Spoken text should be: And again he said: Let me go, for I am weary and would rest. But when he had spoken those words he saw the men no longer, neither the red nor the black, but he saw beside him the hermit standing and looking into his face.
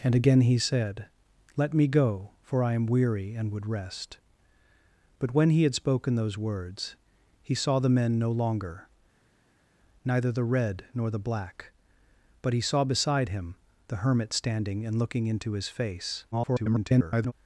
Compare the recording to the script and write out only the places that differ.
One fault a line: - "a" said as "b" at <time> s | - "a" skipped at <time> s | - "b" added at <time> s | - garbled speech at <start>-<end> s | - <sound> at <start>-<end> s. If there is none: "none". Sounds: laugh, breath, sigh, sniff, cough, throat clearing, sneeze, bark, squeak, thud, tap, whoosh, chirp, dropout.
- garbled speech at 16.3-17.3 s